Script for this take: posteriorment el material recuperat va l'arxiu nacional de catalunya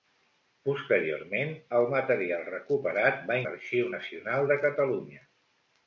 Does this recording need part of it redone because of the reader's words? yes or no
no